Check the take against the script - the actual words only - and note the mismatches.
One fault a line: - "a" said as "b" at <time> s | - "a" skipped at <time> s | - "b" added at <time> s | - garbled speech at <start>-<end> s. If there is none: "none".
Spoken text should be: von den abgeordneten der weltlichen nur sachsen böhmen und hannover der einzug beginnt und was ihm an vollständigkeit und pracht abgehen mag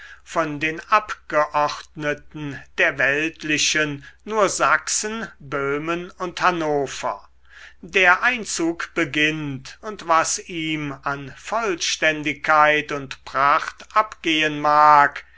none